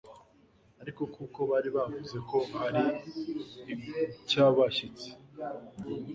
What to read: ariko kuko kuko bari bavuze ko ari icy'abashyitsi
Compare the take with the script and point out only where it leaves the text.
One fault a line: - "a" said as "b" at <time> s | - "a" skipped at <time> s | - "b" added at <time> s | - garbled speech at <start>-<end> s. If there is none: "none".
- "kuko" skipped at 1.4 s